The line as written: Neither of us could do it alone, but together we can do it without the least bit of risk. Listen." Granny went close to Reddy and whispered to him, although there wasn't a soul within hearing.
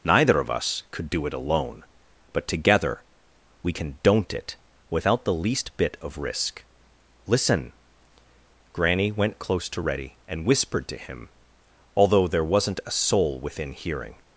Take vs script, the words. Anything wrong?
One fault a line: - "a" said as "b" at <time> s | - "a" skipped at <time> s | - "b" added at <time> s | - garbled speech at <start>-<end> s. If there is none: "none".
- "do" said as "don't" at 4.0 s